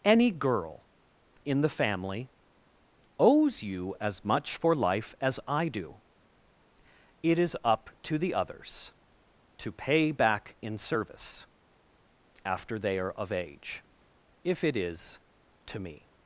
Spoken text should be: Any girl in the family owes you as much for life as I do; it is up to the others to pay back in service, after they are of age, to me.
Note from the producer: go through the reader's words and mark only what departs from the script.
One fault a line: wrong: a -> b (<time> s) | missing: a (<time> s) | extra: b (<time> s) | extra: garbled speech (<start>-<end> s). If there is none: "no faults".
extra: if it is (14.4 s)